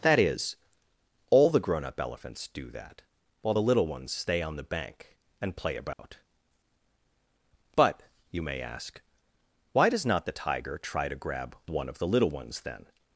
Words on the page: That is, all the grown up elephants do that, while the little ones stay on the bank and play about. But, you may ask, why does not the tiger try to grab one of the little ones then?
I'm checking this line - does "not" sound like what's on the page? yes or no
yes